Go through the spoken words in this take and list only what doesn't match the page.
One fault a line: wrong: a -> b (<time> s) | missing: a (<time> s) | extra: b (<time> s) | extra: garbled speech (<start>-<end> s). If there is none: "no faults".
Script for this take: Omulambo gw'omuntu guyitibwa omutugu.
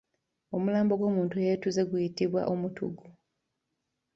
extra: eyeetuze (1.4 s)